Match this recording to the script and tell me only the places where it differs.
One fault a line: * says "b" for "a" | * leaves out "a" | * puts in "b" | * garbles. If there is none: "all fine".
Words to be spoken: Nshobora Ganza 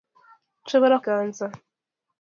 all fine